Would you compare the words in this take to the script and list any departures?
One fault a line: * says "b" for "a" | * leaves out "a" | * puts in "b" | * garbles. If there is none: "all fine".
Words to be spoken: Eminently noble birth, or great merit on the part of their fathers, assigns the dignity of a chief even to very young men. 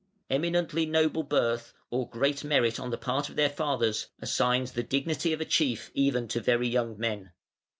all fine